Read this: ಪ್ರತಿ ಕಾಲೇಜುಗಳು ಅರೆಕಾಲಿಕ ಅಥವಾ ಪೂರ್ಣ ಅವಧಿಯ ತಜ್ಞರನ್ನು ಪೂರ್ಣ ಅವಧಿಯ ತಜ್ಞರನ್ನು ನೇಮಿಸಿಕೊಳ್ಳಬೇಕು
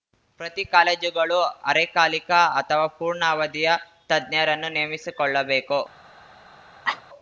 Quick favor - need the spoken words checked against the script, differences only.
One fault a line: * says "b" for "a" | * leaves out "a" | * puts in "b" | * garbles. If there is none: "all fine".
* leaves out "ಪೂರ್ಣ ಅವಧಿಯ ತಜ್ಞರನ್ನು"